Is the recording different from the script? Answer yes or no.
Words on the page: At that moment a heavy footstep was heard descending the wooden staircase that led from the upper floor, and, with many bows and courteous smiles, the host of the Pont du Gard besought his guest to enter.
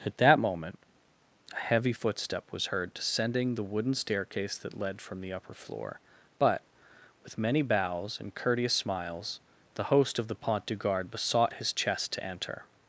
yes